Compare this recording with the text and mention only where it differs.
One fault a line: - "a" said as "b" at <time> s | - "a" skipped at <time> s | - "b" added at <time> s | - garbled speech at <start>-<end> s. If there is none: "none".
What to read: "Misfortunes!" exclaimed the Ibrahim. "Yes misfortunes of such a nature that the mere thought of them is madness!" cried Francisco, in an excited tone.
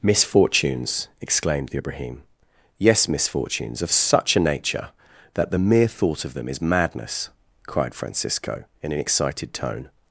none